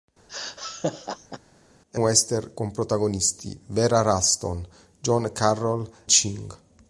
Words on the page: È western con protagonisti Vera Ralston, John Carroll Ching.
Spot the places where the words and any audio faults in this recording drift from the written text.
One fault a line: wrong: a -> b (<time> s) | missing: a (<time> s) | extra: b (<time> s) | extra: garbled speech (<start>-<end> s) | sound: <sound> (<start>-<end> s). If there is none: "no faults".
sound: laugh (0.3-1.4 s)